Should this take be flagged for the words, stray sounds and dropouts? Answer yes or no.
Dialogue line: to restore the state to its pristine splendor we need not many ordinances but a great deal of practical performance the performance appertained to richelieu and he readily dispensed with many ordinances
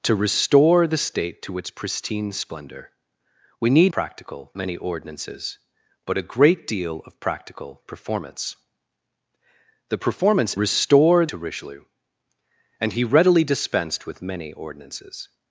yes